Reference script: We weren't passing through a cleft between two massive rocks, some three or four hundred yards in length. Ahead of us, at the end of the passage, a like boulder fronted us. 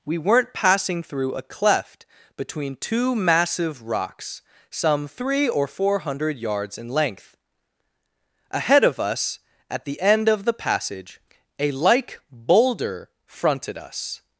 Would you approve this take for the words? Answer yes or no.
yes